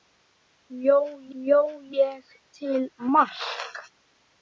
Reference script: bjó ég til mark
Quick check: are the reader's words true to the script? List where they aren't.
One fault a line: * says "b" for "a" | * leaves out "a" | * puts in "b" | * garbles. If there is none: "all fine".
* puts in "bjó"